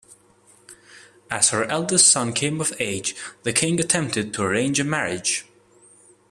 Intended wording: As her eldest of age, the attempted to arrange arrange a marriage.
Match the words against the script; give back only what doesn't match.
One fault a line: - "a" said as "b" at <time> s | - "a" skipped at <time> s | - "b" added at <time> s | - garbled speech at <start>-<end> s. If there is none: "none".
- "son came" added at 2.1 s
- "king" added at 3.5 s
- "arrange" skipped at 4.8 s